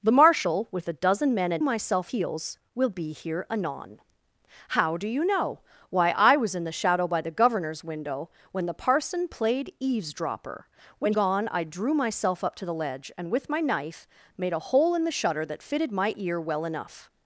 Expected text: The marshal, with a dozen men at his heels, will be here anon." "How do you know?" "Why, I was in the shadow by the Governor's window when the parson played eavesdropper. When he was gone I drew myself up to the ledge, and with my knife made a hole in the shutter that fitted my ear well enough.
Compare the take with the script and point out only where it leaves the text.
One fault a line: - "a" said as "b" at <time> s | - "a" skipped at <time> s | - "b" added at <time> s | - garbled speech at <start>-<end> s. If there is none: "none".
- "his" said as "myself" at 1.6 s
- "he was" skipped at 11.1 s